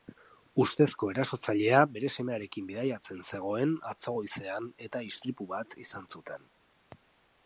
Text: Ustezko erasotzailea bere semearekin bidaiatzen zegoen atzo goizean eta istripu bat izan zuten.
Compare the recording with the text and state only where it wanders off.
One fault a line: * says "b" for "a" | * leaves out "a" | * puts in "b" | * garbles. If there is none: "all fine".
all fine